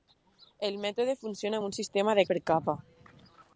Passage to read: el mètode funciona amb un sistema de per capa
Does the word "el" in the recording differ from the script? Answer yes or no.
no